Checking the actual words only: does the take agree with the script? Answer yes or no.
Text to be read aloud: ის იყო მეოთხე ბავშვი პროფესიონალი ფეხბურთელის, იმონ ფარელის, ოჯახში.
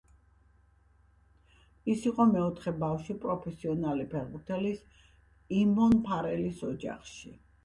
yes